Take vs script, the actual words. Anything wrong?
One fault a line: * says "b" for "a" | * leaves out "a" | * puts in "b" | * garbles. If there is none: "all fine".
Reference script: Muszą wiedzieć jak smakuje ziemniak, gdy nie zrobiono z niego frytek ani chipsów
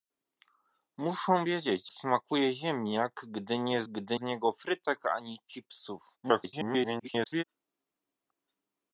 * leaves out "jak"
* says "gdy" for "zrobiono"
* garbles